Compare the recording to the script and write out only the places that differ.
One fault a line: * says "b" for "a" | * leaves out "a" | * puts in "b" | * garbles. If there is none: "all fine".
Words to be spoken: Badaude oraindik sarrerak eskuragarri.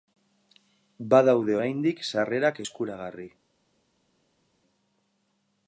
all fine